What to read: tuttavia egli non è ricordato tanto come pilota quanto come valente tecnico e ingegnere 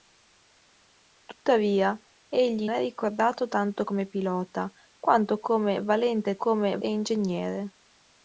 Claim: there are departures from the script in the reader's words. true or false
true